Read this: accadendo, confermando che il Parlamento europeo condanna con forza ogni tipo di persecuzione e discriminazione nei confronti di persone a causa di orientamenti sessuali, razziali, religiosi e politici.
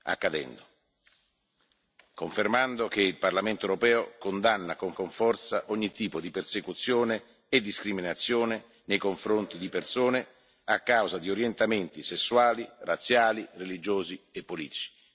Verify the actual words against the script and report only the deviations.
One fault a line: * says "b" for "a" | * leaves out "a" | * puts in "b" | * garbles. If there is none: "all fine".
* puts in "con"